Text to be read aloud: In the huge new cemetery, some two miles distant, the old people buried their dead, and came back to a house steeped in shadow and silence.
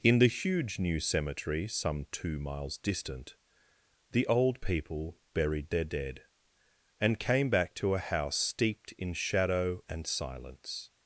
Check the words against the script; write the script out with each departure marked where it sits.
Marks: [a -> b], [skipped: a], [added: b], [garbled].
In the huge new cemetery, some two miles distant, the old people buried their dead, and came back to a house steeped in shadow and silence.